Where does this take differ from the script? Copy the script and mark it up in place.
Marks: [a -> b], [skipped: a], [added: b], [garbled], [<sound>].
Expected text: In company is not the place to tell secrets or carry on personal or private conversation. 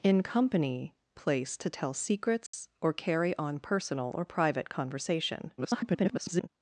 In company [skipped: is not the] place to tell secrets [dropout] or carry on personal or private conversation. [garbled]